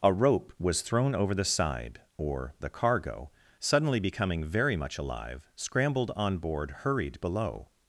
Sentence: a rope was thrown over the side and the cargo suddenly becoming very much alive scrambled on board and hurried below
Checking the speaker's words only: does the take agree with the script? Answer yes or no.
no